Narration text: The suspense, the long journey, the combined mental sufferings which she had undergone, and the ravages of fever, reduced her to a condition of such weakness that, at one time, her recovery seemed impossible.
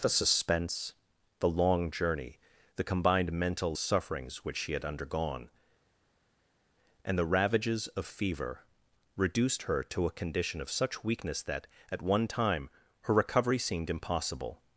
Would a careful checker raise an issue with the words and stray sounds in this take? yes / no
no